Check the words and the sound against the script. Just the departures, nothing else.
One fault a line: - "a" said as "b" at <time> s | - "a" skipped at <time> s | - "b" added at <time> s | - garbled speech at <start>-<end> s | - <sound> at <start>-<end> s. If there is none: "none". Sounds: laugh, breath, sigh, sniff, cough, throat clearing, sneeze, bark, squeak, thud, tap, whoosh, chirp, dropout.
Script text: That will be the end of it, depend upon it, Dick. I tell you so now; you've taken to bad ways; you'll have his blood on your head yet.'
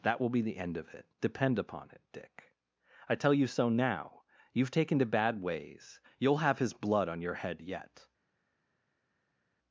none